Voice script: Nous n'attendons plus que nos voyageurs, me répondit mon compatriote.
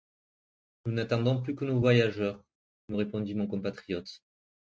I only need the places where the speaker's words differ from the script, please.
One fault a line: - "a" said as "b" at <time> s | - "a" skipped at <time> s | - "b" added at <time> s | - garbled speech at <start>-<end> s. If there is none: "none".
none